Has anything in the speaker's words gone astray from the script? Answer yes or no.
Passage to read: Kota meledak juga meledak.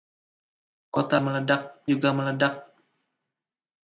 no